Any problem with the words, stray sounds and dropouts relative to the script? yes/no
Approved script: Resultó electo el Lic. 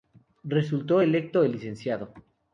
no